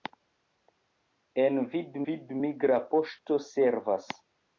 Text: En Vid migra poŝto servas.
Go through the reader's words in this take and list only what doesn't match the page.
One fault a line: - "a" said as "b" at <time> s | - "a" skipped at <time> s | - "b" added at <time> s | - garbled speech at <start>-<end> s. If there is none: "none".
- "Vid" added at 2.1 s